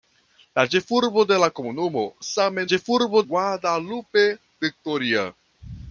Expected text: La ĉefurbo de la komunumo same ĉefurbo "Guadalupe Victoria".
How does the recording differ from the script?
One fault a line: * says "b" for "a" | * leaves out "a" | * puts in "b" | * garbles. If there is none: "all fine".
all fine